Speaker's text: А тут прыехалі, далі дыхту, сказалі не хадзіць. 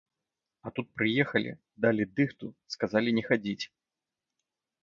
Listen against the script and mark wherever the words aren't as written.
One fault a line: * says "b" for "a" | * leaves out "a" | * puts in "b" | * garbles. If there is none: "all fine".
all fine